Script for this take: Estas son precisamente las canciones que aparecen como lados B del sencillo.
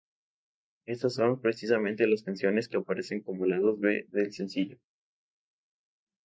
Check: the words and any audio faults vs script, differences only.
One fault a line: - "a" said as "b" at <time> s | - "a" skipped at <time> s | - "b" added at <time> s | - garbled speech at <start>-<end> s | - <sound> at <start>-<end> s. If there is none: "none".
none